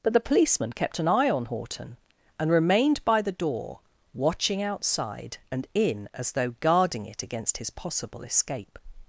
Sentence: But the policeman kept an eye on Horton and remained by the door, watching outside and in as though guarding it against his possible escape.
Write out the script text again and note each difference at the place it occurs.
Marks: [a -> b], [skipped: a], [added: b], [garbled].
But the policeman kept an eye on Horton and remained by the door, watching outside and in as though guarding it against his possible escape.